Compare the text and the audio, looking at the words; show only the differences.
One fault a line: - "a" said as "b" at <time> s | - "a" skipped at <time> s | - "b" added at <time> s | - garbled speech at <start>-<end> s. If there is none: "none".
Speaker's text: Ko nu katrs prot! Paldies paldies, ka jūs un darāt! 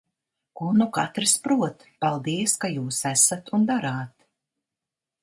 - "paldies" skipped at 2.5 s
- "esat" added at 3.1 s